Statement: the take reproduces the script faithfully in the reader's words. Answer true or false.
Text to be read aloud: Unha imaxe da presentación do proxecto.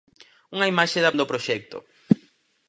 false